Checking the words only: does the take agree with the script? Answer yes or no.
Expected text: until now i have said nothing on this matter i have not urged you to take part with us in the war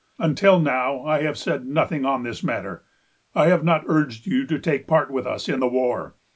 yes